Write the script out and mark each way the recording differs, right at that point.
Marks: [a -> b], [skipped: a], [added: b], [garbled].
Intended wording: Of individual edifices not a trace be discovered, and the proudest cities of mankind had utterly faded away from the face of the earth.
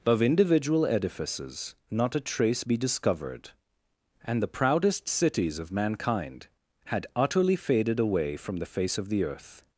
Of individual edifices not a trace be discovered, and the proudest cities of mankind had utterly faded away from the face of the earth.